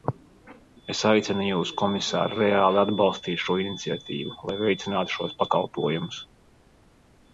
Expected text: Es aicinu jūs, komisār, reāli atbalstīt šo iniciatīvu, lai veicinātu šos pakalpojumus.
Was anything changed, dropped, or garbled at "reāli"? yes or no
no